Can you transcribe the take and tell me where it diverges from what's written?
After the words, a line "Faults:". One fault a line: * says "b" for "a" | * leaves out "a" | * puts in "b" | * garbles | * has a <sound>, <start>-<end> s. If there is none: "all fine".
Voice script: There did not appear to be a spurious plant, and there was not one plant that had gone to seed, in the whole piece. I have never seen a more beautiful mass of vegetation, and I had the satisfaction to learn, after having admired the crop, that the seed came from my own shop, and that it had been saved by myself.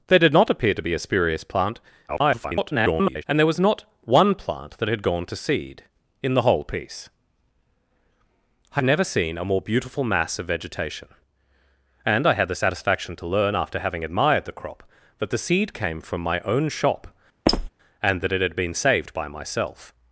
There did not appear to be a spurious plant, [garbled] and there was not one plant that had gone to seed, in the whole piece. I never seen a more beautiful mass of vegetation, and I had the satisfaction to learn, after having admired the crop, that the seed came from my own shop, and that it had been saved by myself.
Faults:
* garbles
* leaves out "have"
* has a squeak, 17.5-17.7 s